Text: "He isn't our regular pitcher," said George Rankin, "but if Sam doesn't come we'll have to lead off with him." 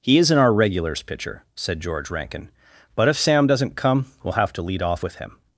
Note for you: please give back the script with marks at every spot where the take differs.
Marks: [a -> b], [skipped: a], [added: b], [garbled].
"He isn't our [regular -> regulars] pitcher," said George Rankin, "but if Sam doesn't come we'll have to lead off with him."